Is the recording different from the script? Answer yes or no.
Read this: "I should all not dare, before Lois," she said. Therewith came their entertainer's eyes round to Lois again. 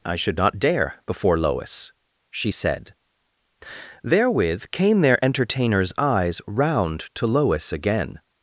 yes